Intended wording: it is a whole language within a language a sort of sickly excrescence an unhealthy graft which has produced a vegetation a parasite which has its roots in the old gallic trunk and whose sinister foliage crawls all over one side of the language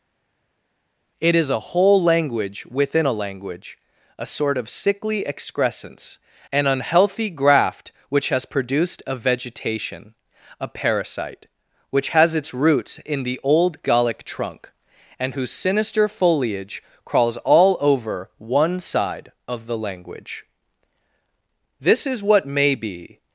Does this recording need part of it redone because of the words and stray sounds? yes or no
yes